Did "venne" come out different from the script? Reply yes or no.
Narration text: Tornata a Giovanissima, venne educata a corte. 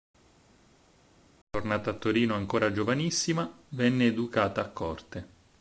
no